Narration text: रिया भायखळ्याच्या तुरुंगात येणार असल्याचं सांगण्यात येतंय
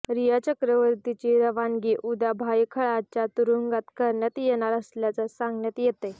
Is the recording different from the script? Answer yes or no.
yes